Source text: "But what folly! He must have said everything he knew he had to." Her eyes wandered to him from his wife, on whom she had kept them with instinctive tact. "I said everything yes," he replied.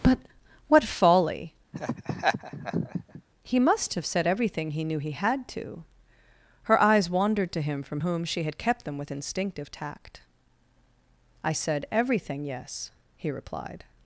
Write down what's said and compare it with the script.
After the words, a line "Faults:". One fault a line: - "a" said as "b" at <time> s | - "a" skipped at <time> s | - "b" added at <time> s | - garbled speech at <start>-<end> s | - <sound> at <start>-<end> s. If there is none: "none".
"But what folly! He must have said everything he knew he had to." Her eyes wandered to him from whom she had kept them with instinctive tact. "I said everything yes," he replied.
Faults:
- laugh at 1.7-3.2 s
- "his wife on" skipped at 8.0 s